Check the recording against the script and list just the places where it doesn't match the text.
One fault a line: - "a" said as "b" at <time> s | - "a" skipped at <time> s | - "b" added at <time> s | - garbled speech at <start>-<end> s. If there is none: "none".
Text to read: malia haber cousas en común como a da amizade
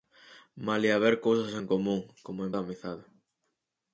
none